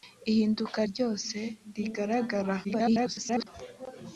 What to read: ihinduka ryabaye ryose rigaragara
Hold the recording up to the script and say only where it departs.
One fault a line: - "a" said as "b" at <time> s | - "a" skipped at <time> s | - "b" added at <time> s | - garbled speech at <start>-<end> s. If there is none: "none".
- "ryabaye" skipped at 0.8 s
- garbled speech at 2.6-3.5 s